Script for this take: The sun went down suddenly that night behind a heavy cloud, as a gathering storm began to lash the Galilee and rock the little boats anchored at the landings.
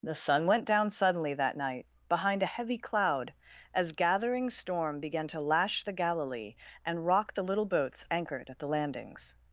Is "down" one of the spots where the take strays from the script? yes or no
no